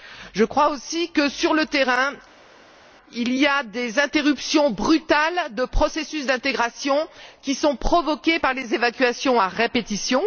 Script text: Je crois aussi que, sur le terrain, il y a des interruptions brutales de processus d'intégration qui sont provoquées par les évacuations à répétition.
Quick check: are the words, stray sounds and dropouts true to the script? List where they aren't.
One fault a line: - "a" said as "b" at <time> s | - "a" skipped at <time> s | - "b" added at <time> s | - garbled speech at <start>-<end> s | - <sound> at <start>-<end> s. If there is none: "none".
none